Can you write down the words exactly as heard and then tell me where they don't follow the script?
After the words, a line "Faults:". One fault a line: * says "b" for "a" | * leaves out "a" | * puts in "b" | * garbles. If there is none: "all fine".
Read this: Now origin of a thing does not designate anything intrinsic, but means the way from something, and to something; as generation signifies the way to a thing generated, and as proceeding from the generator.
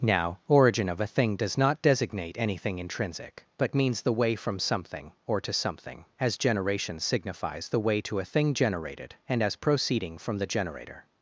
Now origin of a thing does not designate anything intrinsic, but means the way from something, or to something; as generation signifies the way to a thing generated, and as proceeding from the generator.
Faults:
* says "or" for "and"